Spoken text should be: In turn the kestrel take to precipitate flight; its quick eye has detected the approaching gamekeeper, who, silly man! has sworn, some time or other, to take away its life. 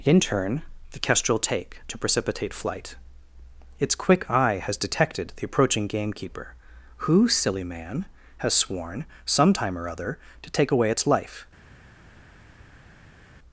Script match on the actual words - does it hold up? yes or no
yes